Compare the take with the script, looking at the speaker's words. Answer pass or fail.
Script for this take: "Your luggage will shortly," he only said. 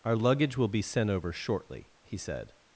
fail